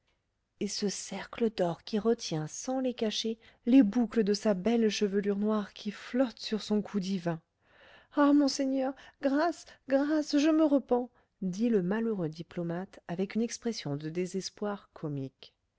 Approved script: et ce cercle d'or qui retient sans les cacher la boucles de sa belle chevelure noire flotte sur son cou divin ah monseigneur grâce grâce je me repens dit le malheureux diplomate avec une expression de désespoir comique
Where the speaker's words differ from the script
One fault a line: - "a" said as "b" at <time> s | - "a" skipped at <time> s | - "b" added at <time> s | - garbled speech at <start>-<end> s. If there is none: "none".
- "la" said as "les" at 3.7 s
- "qui" added at 5.7 s